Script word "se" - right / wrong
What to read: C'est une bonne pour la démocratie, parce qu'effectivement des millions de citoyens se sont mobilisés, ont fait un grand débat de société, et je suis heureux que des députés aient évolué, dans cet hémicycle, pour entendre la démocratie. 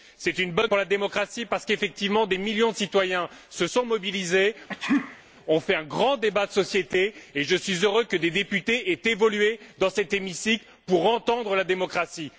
right